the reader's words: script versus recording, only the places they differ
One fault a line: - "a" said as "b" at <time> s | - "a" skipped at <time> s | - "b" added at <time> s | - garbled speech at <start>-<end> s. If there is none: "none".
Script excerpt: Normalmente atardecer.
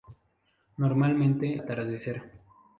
none